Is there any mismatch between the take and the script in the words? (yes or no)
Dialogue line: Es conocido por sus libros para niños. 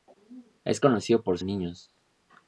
yes